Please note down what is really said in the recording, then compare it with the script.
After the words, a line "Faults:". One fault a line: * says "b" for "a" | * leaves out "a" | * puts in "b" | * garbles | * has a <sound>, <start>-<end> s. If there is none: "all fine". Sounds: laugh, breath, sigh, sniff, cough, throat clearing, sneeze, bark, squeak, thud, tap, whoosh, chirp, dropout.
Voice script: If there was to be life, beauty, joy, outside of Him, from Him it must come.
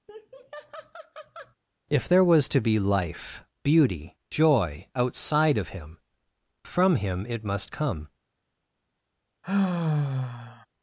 If there was to be life, beauty, joy, outside of Him, from Him it must come.
Faults:
* has a laugh, 0.1-1.6 s
* has a sigh, 9.4-10.7 s